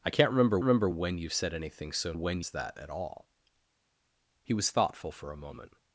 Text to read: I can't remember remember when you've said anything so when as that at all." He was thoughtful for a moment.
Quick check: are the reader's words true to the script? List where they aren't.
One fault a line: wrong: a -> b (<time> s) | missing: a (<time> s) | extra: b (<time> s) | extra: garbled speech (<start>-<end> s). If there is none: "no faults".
no faults